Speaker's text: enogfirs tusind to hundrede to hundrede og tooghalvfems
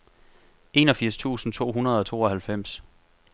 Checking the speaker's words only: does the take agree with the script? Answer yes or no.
no